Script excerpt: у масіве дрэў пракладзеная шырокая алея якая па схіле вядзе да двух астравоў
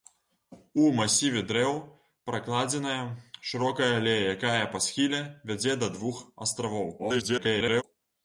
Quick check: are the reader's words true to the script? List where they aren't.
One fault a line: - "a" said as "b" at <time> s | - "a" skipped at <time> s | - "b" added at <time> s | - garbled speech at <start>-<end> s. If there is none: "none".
- garbled speech at 7.0-7.8 s